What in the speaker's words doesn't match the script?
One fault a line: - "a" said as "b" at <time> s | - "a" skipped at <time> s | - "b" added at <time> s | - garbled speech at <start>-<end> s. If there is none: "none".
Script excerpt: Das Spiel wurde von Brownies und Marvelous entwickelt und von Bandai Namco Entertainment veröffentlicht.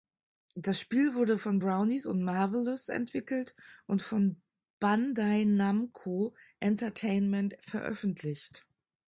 none